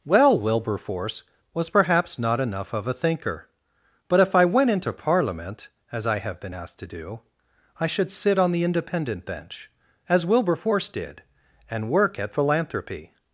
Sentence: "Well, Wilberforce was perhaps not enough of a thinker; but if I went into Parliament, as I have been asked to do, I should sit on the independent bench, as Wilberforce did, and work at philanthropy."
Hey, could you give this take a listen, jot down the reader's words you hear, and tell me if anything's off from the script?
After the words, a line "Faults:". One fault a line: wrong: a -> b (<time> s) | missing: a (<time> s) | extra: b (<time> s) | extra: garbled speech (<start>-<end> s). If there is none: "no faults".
"Well, Wilberforce was perhaps not enough of a thinker; but if I went into Parliament, as I have been asked to do, I should sit on the independent bench, as Wilberforce did, and work at philanthropy."
Faults:
no faults